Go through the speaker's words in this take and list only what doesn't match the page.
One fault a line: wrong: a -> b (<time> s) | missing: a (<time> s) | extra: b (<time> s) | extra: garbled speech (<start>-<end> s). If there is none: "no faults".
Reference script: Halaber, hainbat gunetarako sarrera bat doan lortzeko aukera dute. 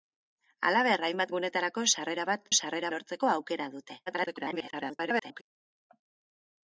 wrong: doan -> sarrera (2.6 s)
extra: garbled speech (4.1-5.4 s)